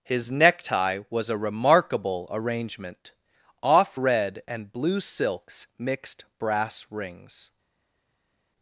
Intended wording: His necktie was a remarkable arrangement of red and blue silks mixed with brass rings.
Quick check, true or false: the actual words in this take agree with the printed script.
false